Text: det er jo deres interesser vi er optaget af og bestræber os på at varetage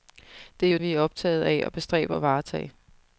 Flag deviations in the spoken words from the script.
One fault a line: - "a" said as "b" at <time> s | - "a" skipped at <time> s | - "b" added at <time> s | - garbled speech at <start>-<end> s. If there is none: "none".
- "deres interesser" skipped at 0.8 s
- "os på" skipped at 2.2 s